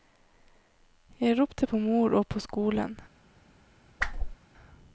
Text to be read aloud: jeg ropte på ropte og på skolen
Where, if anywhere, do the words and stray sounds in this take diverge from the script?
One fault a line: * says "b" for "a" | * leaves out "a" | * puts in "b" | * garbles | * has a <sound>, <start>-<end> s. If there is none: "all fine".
* says "mor" for "ropte"
* has a whoosh, 4.0-4.4 s